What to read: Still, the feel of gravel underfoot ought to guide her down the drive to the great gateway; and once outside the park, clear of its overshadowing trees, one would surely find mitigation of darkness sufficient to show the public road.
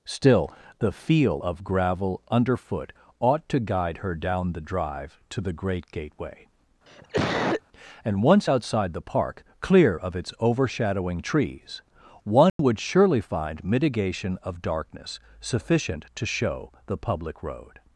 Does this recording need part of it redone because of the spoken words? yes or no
no